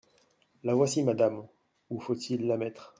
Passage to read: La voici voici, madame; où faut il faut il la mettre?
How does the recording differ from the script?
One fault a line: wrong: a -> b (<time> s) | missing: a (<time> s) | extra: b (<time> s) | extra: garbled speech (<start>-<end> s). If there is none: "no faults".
missing: voici (1.0 s)
missing: faut il (2.5 s)